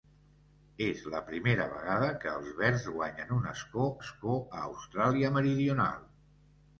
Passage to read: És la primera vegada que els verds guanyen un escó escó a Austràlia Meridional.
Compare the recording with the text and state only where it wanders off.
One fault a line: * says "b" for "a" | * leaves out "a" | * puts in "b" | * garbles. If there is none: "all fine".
all fine